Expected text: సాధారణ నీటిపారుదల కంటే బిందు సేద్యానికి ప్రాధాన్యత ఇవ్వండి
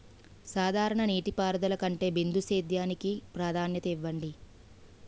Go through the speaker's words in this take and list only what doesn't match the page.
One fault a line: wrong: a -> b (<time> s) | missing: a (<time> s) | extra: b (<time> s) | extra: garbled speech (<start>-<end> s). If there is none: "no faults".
no faults